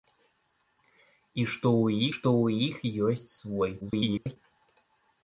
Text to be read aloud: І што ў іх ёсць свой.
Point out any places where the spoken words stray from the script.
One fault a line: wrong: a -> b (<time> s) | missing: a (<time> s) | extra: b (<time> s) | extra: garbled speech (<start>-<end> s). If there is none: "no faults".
extra: што ў (2.2 s)
extra: garbled speech (3.8-4.4 s)